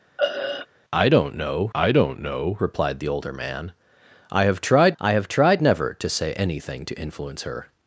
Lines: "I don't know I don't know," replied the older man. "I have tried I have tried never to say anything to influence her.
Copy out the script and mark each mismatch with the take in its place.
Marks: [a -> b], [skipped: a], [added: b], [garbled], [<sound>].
[throat clearing] "I don't know I don't know," replied the older man. "I have tried I have tried never to say anything to influence her.